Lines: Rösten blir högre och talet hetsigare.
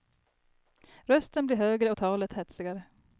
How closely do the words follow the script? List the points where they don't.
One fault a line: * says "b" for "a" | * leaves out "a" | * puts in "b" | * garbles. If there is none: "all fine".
all fine